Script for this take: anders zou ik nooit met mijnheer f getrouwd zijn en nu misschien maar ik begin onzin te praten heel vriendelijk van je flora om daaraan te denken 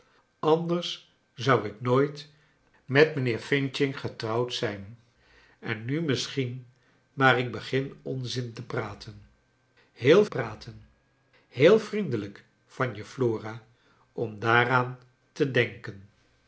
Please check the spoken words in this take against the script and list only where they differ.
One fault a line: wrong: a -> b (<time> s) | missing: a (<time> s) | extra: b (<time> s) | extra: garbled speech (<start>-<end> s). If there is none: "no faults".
extra: praten heel (10.3 s)